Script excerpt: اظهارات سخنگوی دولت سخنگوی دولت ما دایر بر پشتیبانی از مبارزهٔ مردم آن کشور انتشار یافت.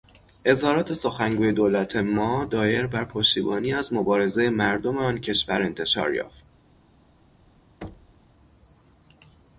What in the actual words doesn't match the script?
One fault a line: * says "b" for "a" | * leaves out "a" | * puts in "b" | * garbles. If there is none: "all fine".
* leaves out "سخنگوی دولت"